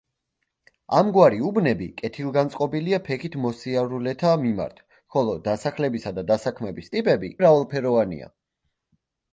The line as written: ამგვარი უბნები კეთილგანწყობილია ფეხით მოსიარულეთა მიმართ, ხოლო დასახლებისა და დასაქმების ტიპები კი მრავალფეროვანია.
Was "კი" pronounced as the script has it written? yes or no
no